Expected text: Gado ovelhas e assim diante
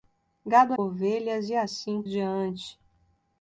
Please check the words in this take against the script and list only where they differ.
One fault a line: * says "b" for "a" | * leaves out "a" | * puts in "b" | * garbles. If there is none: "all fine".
all fine